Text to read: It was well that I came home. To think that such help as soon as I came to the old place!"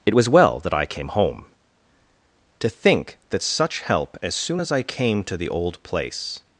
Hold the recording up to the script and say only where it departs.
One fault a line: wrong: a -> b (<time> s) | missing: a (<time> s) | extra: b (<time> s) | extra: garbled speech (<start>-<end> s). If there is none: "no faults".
no faults